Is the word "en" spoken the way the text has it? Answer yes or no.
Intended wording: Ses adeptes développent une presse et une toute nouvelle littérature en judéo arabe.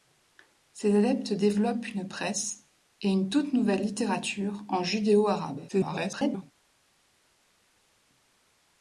yes